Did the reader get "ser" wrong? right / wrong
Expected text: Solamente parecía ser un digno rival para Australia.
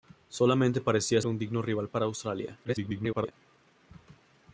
wrong